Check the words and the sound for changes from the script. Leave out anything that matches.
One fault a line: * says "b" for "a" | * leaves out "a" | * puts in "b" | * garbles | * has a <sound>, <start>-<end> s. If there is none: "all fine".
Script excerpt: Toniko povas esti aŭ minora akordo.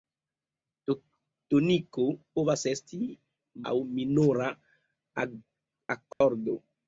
* has a dropout, 6.1-6.2 s